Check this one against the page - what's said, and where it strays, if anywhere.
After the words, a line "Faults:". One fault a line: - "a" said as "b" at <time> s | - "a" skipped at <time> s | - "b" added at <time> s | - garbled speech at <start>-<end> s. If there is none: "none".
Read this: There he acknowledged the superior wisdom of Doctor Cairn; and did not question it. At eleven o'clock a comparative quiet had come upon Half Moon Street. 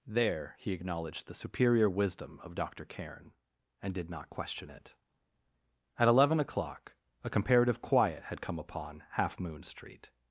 There he acknowledged the superior wisdom of Doctor Cairn; and did not question it. At eleven o'clock a comparative quiet had come upon Half Moon Street.
Faults:
none